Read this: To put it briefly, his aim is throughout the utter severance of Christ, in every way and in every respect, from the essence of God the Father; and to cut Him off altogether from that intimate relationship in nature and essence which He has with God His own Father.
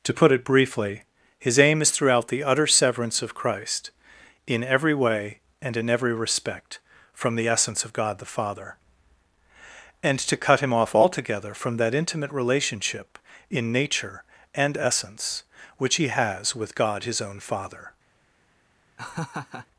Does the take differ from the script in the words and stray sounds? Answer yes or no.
yes